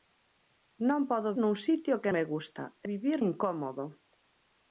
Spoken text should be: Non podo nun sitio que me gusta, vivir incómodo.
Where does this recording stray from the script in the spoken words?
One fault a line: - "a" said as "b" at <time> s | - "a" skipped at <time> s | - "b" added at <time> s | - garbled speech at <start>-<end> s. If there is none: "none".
none